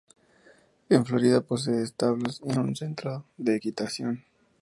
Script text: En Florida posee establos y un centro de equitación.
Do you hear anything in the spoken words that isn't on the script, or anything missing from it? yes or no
no